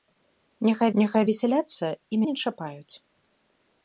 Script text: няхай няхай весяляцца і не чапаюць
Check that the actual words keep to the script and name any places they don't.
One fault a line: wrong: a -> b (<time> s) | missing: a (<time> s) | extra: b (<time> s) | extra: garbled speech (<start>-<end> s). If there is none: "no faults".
no faults